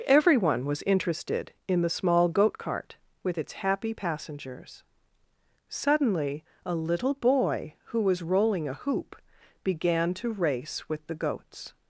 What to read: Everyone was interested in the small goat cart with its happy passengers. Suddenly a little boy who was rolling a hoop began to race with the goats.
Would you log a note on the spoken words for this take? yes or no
no